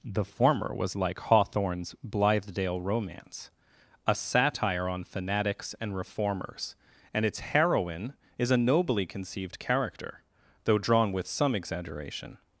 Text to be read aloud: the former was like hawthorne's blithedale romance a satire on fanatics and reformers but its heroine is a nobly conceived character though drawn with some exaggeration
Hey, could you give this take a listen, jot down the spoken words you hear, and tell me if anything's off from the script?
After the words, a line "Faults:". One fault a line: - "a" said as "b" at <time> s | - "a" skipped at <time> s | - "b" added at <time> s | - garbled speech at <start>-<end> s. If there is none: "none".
the former was like hawthorne's blithedale romance a satire on fanatics and reformers and its heroine is a nobly conceived character though drawn with some exaggeration
Faults:
- "but" said as "and" at 7.1 s